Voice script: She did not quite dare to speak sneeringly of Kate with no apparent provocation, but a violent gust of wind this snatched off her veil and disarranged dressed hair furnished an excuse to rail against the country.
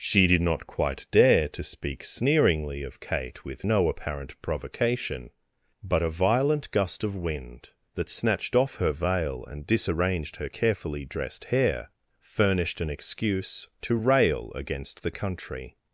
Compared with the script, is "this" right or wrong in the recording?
wrong